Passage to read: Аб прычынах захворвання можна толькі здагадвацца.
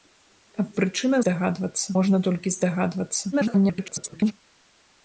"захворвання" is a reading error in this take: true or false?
true